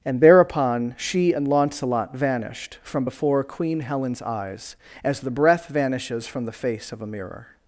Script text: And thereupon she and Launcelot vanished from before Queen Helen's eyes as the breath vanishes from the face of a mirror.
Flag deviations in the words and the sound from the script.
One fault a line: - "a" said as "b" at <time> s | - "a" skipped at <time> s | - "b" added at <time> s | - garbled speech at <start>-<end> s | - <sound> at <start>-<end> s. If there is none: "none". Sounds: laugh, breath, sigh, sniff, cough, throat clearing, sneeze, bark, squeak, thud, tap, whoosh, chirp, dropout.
none